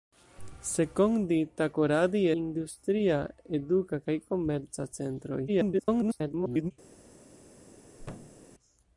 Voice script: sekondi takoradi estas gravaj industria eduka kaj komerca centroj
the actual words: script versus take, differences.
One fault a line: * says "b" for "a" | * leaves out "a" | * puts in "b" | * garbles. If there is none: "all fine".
* leaves out "estas gravaj"
* garbles